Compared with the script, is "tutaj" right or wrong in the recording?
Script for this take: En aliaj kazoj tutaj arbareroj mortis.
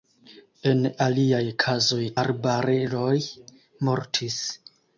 wrong